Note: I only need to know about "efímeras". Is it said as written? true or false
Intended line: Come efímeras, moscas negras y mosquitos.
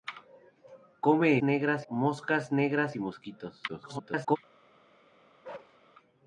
false